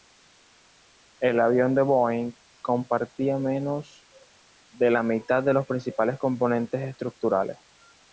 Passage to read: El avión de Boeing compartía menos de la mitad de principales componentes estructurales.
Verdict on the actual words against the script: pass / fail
fail